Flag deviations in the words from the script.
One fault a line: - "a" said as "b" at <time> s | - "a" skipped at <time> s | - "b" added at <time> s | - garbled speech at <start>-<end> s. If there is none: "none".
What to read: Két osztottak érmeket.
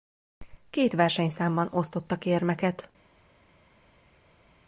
- "versenyszámban" added at 0.9 s